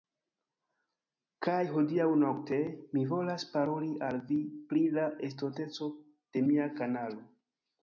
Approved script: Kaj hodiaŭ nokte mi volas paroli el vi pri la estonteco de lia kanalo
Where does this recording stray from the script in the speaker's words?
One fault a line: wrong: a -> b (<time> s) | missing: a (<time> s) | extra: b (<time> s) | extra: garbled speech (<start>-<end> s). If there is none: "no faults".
wrong: el -> al (4.1 s)
wrong: lia -> mia (6.5 s)